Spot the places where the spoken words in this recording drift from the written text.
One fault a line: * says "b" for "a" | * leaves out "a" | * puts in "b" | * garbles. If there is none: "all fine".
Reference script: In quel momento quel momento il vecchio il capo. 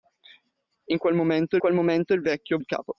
all fine